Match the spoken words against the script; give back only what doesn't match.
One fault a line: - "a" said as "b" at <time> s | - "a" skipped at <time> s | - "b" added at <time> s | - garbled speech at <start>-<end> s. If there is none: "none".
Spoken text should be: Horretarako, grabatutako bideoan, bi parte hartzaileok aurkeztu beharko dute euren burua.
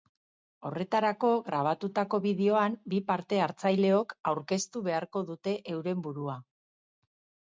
none